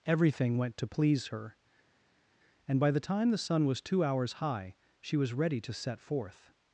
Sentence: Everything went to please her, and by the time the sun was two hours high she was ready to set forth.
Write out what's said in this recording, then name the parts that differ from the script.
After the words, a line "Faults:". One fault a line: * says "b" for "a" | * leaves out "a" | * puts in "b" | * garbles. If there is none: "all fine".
Everything went to please her, and by the time the sun was two hours high she was ready to set forth.
Faults:
all fine